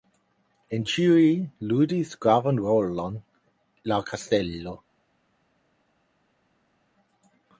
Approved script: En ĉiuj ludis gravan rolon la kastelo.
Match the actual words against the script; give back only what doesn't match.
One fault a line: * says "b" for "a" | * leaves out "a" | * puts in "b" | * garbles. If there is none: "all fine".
all fine